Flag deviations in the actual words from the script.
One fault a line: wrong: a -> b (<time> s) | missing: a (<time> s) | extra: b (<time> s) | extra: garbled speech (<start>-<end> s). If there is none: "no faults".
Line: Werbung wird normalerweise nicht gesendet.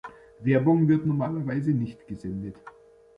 no faults